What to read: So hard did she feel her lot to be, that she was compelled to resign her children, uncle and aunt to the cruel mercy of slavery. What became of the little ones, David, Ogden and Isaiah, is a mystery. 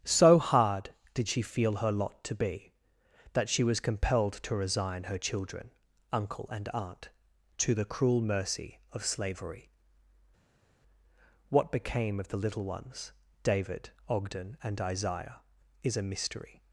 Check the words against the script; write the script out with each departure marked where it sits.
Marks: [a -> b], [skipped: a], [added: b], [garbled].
So hard did she feel her lot to be, that she was compelled to resign her children, uncle and aunt to the cruel mercy of slavery. What became of the little ones, David, Ogden and Isaiah, is a mystery.